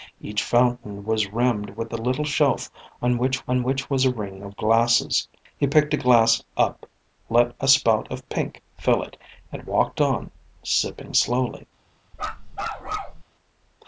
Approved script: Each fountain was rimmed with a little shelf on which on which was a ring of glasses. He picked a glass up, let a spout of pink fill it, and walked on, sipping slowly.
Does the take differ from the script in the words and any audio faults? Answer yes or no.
yes